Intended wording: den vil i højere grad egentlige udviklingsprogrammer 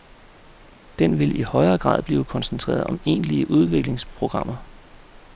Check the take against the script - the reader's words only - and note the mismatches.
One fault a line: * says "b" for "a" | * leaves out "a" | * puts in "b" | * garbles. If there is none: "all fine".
* puts in "blive koncentreret om"